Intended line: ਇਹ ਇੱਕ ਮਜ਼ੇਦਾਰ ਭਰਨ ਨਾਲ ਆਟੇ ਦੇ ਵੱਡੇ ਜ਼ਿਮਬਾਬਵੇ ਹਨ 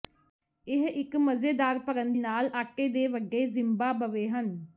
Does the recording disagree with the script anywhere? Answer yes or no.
no